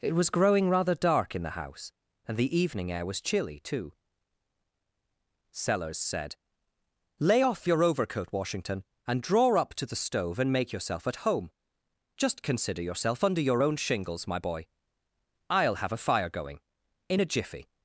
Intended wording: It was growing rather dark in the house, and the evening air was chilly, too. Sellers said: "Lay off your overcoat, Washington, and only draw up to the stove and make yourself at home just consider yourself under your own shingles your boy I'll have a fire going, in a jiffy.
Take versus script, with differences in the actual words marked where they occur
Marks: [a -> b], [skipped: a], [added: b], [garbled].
It was growing rather dark in the house, and the evening air was chilly, too. Sellers said: "Lay off your overcoat, Washington, and [skipped: only] draw up to the stove and make yourself at home just consider yourself under your own shingles [your -> my] boy I'll have a fire going, in a jiffy.